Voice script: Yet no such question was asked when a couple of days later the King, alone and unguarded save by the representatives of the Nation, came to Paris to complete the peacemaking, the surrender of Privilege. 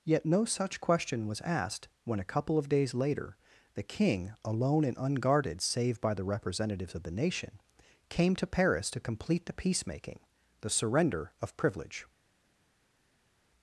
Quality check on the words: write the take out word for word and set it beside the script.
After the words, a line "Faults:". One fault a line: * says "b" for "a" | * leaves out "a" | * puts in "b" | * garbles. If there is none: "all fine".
Yet no such question was asked when a couple of days later the King, alone and unguarded save by the representatives of the Nation, came to Paris to complete the peacemaking, the surrender of Privilege.
Faults:
all fine